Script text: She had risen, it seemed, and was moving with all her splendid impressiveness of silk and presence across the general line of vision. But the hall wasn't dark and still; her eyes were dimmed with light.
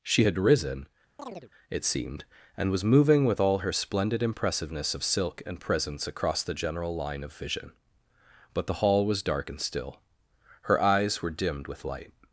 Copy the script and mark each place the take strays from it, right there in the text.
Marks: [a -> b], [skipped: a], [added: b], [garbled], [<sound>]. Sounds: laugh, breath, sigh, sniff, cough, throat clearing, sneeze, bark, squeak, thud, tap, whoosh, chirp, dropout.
She had risen, [chirp] it seemed, and was moving with all her splendid impressiveness of silk and presence across the general line of vision. But the hall [wasn't -> was] dark and still; her eyes were dimmed with light.